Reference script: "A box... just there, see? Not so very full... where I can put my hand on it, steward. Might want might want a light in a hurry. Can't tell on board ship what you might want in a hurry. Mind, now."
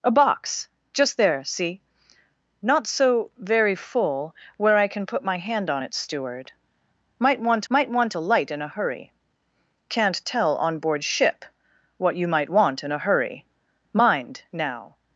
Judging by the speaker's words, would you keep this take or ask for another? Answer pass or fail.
pass